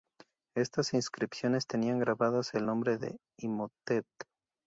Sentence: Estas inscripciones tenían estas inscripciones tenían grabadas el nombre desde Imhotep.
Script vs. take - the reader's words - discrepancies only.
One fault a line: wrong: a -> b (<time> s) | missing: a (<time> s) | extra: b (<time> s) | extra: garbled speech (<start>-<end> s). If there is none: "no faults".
missing: estas inscripciones tenían (2.0 s)
wrong: desde -> de (2.9 s)